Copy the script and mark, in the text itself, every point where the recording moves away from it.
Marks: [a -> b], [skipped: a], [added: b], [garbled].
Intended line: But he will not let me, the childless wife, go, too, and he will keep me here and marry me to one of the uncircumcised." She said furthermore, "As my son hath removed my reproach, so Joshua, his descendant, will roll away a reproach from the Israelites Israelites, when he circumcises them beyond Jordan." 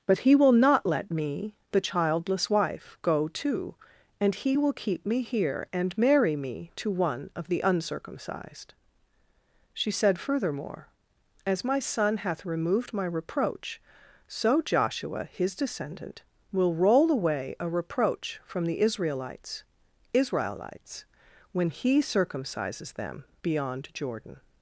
But he will not let me, the childless wife, go, too, and he will keep me here and marry me to one of the uncircumcised." She said furthermore, "As my son hath removed my reproach, so Joshua, his descendant, will roll away a reproach from the Israelites Israelites, when he circumcises them beyond Jordan."